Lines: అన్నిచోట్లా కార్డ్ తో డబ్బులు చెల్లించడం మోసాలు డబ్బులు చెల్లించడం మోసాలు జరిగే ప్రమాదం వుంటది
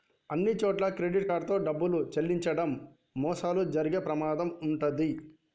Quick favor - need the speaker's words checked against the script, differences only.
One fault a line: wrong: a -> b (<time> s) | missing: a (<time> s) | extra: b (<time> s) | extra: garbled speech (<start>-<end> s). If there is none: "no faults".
extra: క్రెడిట్ (0.9 s)
missing: డబ్బులు చెల్లించడం మోసాలు (3.6 s)